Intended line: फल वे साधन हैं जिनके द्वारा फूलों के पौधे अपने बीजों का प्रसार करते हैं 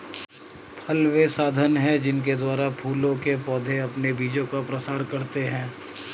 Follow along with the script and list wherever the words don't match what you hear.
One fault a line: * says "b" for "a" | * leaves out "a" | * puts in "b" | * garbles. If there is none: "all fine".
all fine